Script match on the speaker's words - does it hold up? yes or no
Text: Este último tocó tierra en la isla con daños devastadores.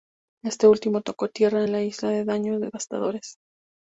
yes